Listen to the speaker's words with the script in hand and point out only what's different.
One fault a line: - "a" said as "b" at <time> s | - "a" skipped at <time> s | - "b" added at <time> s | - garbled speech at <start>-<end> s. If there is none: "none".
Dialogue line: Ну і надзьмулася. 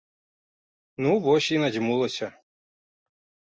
- "вось" added at 1.3 s